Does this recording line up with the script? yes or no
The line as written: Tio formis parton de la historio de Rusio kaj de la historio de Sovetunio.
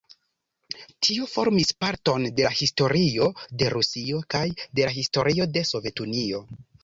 yes